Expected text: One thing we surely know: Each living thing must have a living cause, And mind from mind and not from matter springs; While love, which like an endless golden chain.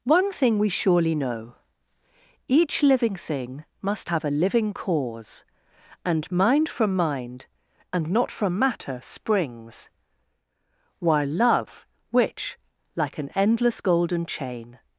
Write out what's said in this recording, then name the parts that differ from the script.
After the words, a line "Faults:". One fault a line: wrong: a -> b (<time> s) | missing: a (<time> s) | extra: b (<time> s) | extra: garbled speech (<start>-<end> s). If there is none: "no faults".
One thing we surely know: Each living thing must have a living cause, And mind from mind and not from matter springs; While love, which like an endless golden chain.
Faults:
no faults